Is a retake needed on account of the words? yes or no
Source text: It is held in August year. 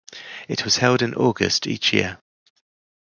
yes